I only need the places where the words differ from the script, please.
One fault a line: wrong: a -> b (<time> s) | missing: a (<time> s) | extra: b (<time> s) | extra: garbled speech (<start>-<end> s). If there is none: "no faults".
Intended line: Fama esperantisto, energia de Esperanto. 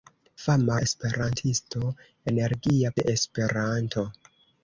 no faults